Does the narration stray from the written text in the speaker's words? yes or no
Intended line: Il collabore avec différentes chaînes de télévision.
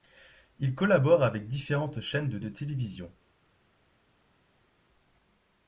yes